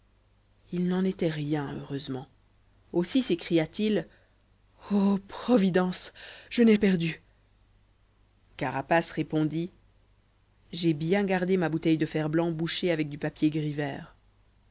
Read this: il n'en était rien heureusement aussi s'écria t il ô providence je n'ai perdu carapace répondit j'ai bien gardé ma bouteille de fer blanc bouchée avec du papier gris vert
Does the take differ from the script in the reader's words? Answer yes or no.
no